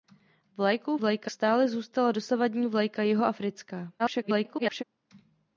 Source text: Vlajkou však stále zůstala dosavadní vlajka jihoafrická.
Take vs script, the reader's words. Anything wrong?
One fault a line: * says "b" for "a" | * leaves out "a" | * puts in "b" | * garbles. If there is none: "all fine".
* says "vlajka" for "však"
* garbles